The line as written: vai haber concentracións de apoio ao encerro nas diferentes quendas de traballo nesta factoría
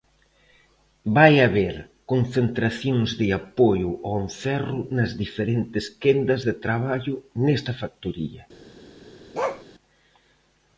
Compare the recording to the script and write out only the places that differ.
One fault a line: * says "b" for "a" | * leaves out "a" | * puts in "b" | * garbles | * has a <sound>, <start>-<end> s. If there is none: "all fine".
* has a bark, 9.3-9.6 s